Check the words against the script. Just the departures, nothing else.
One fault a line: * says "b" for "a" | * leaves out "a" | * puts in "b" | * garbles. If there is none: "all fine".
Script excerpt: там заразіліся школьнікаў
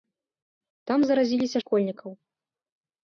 all fine